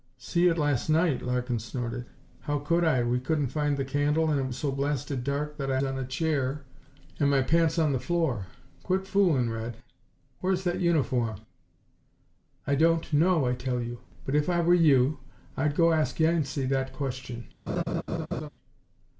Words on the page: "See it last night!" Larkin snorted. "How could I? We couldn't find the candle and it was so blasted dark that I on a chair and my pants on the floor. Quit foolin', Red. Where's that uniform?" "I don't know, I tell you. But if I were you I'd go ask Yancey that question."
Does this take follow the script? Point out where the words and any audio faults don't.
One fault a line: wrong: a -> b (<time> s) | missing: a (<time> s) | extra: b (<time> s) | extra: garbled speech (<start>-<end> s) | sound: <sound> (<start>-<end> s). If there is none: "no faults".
sound: laugh (17.7-18.5 s)